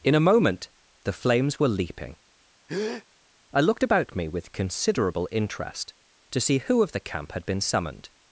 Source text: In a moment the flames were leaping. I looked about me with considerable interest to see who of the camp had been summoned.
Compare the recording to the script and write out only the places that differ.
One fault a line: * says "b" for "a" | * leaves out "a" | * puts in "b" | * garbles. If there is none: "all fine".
all fine